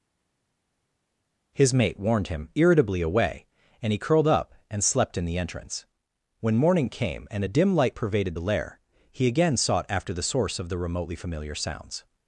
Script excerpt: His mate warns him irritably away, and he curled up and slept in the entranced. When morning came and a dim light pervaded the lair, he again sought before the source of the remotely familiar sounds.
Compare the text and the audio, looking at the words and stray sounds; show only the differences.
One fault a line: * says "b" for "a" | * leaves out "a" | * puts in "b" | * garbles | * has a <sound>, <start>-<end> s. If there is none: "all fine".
* says "warned" for "warns"
* says "entrance" for "entranced"
* says "after" for "before"